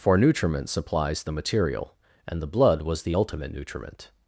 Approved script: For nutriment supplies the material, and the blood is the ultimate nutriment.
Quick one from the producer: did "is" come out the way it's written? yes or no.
no